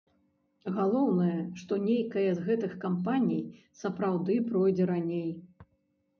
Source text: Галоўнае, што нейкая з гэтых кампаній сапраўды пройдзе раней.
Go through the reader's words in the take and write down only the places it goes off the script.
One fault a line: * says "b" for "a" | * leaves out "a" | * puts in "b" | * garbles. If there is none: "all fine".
all fine